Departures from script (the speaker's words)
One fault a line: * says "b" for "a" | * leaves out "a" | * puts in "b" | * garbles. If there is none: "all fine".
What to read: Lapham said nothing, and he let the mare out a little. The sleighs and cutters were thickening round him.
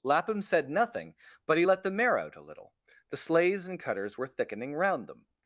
* says "but" for "and"
* says "them" for "him"